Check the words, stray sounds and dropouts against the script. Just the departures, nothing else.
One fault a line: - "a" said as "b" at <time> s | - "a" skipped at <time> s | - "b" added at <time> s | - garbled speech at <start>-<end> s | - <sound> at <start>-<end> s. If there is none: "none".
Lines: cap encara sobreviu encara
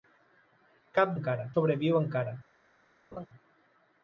- laugh at 3.1-3.3 s